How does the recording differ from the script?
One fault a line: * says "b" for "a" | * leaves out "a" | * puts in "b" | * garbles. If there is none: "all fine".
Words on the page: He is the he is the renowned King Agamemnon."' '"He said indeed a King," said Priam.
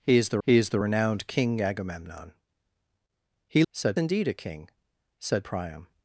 all fine